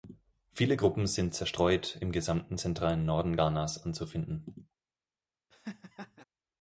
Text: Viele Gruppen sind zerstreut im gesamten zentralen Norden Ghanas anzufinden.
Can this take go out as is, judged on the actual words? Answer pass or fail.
pass